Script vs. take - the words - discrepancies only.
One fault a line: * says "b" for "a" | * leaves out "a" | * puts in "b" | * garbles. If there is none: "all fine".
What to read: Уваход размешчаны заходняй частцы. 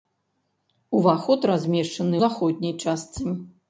all fine